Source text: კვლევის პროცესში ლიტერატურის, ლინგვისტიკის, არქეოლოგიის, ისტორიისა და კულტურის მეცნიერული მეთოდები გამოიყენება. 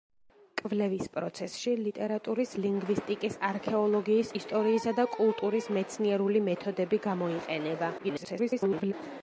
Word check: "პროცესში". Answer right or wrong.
right